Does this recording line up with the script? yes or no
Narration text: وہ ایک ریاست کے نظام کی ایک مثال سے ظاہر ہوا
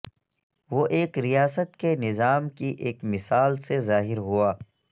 yes